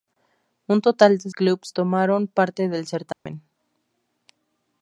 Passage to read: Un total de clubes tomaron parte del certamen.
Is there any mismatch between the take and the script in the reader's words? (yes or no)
no